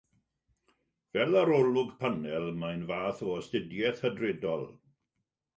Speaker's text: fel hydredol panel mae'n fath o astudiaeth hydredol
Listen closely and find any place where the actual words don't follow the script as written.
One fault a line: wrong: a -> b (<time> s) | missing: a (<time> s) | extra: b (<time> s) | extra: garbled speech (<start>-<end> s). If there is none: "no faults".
wrong: hydredol -> arolwg (1.4 s)